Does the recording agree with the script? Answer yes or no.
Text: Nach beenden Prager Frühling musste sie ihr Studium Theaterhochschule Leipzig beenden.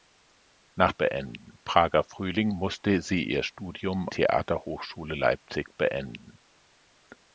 yes